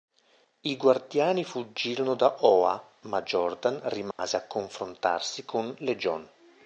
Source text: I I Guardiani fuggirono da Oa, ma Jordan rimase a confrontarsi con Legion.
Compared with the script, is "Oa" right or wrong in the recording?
right